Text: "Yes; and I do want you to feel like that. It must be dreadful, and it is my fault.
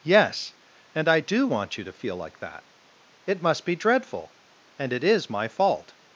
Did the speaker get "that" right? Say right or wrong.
right